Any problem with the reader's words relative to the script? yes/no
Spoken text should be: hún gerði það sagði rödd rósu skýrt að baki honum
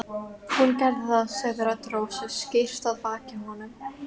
no